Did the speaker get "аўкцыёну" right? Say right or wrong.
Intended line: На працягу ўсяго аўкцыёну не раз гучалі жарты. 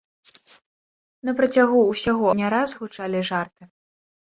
wrong